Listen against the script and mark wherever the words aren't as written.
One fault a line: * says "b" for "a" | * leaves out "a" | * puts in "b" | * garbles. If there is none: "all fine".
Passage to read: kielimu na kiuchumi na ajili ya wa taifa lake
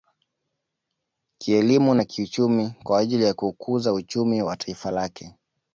* says "kwa" for "na"
* puts in "kuukuza uchumi"